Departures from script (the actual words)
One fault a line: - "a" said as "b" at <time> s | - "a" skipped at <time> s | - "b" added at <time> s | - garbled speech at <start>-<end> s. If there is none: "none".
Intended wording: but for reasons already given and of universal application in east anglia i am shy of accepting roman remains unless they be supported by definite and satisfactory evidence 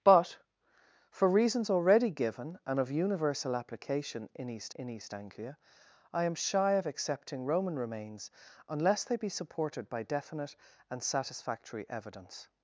- "in east" added at 4.7 s